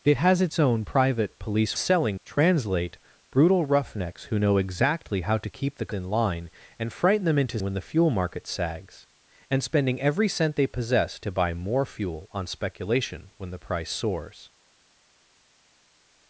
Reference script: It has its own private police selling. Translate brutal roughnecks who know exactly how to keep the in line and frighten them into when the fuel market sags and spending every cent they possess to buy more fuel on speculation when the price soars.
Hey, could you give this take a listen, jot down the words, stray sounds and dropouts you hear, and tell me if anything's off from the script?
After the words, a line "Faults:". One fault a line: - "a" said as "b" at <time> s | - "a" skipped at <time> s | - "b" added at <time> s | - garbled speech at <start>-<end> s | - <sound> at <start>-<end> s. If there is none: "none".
It has its own private police selling. Translate brutal roughnecks who know exactly how to keep the in line and frighten them into when the fuel market sags and spending every cent they possess to buy more fuel on speculation when the price soars.
Faults:
none